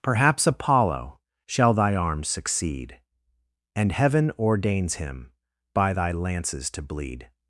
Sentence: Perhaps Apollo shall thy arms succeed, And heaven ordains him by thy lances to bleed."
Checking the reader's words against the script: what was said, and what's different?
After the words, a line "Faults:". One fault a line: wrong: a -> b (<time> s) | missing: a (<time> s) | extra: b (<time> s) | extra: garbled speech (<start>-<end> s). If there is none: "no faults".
Perhaps Apollo shall thy arms succeed, And heaven ordains him by thy lances to bleed."
Faults:
no faults